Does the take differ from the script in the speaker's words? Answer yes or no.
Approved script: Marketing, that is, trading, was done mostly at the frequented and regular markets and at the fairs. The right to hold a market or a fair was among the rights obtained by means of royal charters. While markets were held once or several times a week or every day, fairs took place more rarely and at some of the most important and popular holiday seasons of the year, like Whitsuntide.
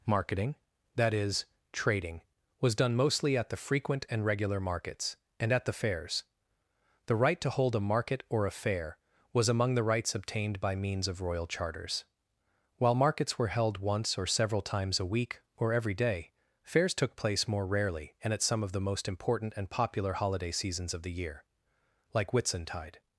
yes